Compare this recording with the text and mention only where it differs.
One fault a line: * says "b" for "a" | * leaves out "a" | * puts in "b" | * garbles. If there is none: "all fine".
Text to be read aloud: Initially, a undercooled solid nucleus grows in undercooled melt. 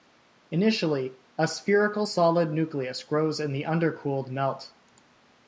* says "spherical" for "undercooled"
* puts in "the"